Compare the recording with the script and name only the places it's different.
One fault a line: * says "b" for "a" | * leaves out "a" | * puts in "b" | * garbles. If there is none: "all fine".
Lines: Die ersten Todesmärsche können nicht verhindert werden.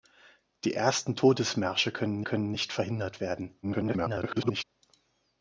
* puts in "können"
* garbles